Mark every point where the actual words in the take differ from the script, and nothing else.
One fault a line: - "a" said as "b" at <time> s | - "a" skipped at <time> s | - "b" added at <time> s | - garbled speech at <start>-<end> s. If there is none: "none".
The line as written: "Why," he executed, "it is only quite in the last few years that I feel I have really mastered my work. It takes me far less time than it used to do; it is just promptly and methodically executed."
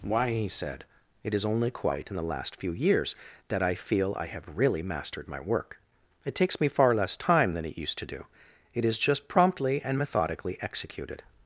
- "executed" said as "said" at 0.5 s